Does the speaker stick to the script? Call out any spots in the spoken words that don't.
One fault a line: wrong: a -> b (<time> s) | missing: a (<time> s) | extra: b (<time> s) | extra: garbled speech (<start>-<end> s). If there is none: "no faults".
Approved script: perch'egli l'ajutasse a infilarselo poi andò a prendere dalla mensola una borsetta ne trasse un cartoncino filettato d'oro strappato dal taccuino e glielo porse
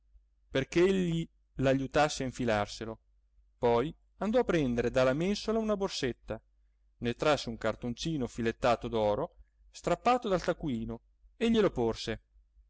no faults